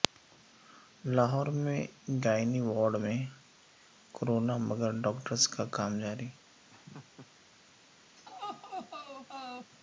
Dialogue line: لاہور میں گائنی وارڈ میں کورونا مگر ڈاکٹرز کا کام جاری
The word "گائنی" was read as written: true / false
true